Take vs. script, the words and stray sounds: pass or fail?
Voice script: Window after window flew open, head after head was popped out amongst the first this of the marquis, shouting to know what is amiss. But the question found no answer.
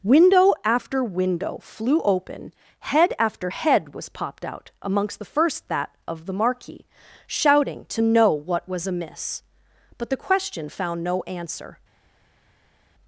fail